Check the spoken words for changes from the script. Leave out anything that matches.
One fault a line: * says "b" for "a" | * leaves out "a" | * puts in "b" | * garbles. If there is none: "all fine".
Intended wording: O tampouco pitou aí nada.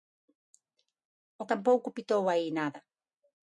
all fine